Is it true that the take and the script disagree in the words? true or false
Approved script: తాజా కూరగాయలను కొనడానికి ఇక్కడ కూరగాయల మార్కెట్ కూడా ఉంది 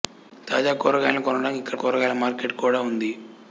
false